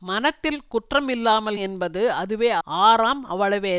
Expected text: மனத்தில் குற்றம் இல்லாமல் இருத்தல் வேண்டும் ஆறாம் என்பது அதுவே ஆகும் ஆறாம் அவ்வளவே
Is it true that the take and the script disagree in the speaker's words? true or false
true